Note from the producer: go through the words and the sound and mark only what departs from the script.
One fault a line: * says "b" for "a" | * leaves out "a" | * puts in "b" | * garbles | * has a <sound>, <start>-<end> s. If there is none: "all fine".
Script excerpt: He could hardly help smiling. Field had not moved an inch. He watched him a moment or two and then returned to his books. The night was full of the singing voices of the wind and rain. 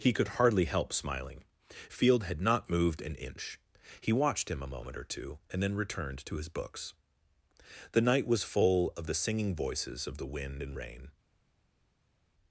all fine